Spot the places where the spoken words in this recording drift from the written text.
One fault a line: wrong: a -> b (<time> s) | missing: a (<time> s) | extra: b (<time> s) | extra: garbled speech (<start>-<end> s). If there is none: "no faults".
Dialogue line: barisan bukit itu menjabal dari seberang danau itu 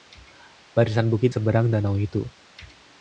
missing: itu menjabal dari (1.3 s)